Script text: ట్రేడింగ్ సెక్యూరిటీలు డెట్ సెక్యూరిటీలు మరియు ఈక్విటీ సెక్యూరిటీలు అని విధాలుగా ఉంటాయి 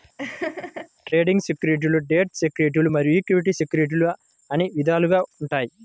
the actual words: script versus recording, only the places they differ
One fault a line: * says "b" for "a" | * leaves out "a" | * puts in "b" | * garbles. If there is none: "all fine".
all fine